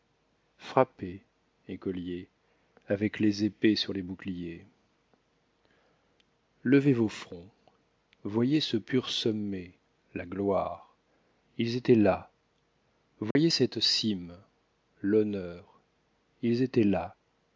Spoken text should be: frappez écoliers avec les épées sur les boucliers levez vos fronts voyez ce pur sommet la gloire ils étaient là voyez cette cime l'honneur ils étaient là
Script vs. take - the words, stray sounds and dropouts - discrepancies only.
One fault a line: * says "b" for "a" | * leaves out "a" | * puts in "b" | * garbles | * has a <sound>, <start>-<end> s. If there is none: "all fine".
* has a dropout, 13.3-13.4 s